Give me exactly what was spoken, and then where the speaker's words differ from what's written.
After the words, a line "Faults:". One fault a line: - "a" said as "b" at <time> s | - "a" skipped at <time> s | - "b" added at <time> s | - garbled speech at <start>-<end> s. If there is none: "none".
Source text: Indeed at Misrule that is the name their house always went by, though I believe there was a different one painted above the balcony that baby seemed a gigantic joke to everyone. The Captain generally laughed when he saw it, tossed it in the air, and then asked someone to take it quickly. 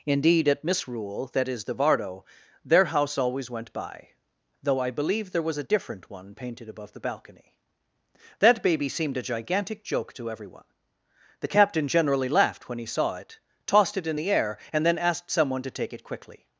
Indeed at Misrule that is the vardo their house always went by, though I believe there was a different one painted above the balcony that baby seemed a gigantic joke to everyone. The Captain generally laughed when he saw it, tossed it in the air, and then asked someone to take it quickly.
Faults:
- "name" said as "vardo" at 1.8 s